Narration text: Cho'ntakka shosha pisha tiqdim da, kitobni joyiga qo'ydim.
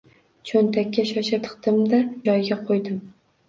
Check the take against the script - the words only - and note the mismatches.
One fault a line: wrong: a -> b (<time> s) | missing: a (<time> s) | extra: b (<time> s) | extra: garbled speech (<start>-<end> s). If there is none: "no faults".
missing: pisha (1.4 s)
missing: kitobni (2.0 s)